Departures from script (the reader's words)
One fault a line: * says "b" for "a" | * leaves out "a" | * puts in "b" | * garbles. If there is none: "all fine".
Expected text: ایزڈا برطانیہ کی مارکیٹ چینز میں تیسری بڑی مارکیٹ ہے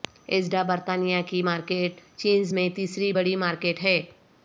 all fine